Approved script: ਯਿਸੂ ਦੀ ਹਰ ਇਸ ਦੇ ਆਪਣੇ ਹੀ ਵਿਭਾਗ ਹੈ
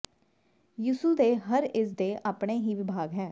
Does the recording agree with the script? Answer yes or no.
no